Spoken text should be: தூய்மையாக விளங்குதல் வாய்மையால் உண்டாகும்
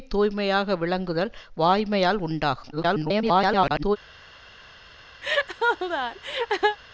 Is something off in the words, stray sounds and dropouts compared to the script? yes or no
yes